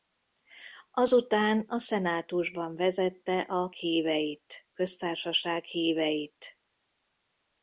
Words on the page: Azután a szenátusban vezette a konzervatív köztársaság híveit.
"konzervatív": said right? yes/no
no